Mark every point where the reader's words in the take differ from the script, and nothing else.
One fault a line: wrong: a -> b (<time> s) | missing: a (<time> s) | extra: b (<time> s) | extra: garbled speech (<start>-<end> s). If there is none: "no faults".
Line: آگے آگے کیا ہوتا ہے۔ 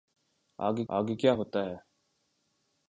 no faults